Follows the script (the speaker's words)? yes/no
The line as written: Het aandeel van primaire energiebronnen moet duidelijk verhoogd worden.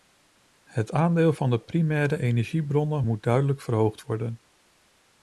no